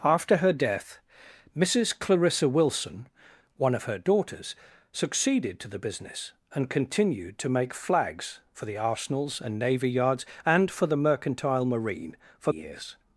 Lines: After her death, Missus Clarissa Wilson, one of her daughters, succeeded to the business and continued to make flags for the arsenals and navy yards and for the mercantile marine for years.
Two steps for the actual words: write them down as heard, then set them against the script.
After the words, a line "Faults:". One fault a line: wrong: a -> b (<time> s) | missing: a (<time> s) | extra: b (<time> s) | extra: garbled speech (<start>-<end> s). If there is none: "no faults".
After her death, Missus Clarissa Wilson, one of her daughters, succeeded to the business and continued to make flags for the arsenals and navy yards and for the mercantile marine for years.
Faults:
no faults